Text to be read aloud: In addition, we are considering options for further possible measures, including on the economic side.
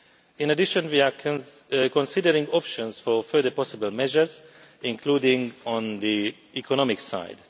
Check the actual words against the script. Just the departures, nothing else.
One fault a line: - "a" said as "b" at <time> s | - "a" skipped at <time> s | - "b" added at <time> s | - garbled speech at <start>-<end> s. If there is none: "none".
none